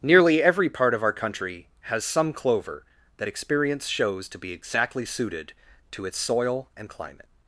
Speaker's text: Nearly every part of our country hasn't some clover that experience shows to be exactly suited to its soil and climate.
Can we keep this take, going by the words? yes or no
no